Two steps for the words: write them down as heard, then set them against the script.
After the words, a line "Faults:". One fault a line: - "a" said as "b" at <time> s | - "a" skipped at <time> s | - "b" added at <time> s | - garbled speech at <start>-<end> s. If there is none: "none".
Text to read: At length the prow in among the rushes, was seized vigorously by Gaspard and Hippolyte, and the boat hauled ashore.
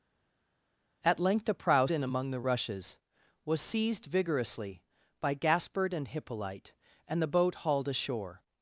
At length the prow in among the rushes, was seized vigorously by Gaspard and Hippolyte, and the boat hauled ashore.
Faults:
none